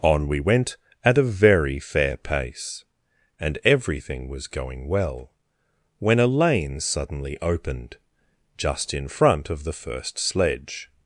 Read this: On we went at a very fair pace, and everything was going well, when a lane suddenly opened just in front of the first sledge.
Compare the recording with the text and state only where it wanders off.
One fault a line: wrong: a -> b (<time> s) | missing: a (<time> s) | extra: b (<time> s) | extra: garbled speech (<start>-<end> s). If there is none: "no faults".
no faults